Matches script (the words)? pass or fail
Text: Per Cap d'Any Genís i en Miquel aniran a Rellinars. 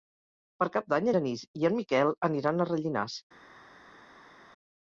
pass